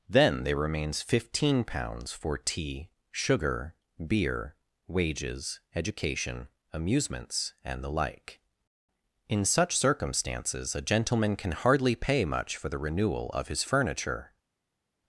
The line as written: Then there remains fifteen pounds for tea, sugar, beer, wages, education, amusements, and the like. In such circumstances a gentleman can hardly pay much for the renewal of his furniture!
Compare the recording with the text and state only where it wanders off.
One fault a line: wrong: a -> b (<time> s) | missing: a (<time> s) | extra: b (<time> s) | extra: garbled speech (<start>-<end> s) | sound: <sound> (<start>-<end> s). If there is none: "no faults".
no faults